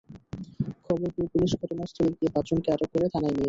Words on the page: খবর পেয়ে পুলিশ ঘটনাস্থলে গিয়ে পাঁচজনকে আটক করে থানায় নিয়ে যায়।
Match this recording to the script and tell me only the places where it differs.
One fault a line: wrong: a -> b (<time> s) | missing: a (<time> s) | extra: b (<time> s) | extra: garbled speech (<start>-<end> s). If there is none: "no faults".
no faults